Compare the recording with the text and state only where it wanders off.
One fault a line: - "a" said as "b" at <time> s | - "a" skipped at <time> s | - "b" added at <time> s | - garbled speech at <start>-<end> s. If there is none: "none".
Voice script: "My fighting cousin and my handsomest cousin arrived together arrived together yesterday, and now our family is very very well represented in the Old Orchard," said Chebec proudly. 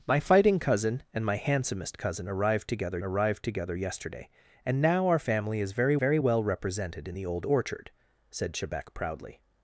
none